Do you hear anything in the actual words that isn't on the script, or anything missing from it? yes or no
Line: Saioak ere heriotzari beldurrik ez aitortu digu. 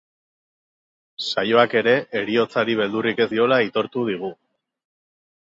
yes